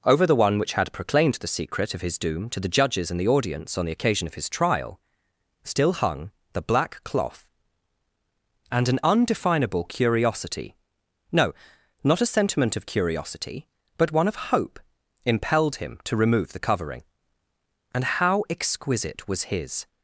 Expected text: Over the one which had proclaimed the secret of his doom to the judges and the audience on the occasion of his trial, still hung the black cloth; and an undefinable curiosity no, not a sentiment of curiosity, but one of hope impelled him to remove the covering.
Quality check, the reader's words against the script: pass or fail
fail